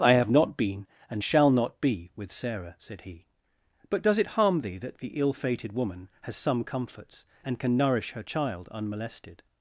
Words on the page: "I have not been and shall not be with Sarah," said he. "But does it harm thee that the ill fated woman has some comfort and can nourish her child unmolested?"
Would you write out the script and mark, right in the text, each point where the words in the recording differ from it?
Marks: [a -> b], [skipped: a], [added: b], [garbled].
"I have not been and shall not be with Sarah," said he. "But does it harm thee that the ill fated woman has some [comfort -> comforts] and can nourish her child unmolested?"